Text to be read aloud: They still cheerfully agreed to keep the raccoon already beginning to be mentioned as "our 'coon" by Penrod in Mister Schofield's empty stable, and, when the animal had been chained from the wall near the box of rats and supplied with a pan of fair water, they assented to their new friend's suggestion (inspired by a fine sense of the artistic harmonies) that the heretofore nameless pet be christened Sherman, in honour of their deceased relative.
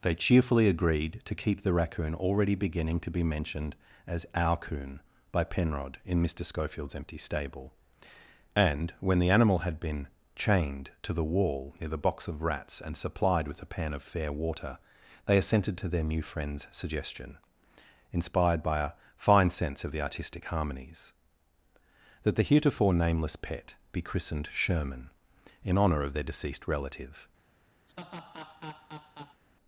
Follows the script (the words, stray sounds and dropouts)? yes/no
no